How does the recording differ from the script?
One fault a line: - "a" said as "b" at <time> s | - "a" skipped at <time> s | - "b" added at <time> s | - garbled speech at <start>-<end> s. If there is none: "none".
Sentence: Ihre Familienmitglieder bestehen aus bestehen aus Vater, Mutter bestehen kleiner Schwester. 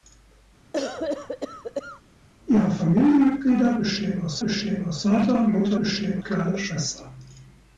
none